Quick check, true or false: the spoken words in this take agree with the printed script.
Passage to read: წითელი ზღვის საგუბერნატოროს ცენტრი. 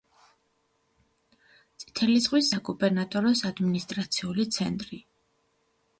false